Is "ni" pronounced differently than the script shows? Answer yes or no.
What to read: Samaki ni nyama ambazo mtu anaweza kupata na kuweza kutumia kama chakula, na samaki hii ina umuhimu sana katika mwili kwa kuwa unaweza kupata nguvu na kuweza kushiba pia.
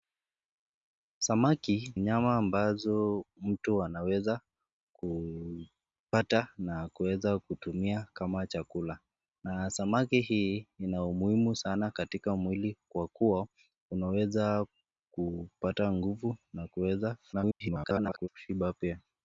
yes